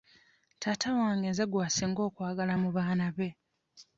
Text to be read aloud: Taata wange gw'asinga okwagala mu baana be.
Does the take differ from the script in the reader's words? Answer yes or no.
yes